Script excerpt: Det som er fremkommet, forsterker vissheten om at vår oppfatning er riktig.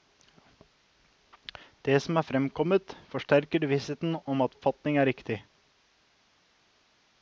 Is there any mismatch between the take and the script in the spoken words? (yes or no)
yes